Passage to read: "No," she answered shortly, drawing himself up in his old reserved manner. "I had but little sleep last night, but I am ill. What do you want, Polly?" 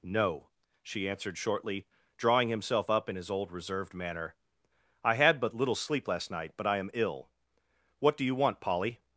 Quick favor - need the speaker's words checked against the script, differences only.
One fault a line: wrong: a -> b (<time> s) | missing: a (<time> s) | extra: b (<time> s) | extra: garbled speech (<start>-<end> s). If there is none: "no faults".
no faults